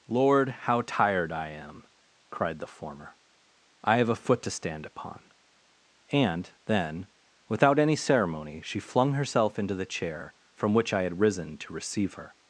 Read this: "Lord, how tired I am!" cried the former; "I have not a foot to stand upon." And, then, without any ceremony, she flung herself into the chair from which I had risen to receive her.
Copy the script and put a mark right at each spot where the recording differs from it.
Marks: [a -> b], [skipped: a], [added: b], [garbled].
"Lord, how tired I am!" cried the former; "I have [skipped: not] a foot to stand upon." And, then, without any ceremony, she flung herself into the chair from which I had risen to receive her.